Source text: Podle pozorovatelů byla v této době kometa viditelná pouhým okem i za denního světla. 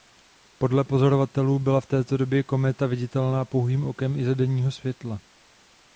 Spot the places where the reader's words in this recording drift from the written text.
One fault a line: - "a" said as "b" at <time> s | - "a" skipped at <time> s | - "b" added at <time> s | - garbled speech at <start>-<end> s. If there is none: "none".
none